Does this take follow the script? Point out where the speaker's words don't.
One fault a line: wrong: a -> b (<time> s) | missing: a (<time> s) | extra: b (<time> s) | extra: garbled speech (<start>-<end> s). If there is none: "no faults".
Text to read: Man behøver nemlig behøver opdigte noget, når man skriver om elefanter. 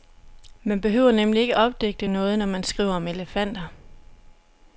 wrong: behøver -> ikke (1.4 s)